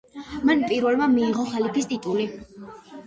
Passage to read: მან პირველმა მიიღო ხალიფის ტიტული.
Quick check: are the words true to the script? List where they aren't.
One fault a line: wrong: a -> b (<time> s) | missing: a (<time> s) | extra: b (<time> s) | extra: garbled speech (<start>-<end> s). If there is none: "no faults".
no faults